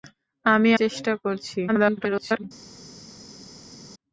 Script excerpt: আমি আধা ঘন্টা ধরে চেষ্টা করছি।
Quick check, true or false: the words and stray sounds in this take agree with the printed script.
false